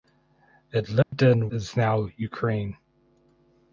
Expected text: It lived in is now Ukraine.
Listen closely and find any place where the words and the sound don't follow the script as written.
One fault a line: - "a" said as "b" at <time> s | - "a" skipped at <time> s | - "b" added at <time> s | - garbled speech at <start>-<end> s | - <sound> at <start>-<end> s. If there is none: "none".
- dropout at 1.0-1.1 s